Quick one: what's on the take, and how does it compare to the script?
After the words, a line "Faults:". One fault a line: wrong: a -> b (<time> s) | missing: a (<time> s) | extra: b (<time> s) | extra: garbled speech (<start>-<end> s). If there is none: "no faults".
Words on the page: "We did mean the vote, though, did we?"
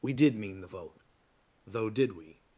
"We did mean the vote, though, did we?"
Faults:
no faults